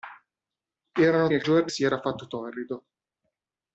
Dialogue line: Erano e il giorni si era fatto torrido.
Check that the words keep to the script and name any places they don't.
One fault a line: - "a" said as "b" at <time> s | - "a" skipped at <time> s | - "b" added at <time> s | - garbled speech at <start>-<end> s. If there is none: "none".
none